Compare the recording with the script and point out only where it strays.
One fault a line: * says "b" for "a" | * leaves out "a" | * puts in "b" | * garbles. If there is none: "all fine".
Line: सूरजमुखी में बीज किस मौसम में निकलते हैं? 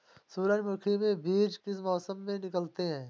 all fine